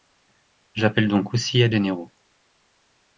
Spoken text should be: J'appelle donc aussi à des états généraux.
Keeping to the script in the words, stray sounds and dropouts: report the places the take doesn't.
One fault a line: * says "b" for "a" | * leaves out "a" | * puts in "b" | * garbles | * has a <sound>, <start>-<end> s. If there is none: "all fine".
* leaves out "des états"